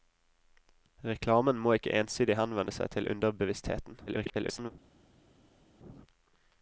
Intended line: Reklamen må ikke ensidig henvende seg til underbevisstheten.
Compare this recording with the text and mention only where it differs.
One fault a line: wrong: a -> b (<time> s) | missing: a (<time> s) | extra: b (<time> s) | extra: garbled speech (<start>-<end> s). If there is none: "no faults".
extra: garbled speech (4.1-4.7 s)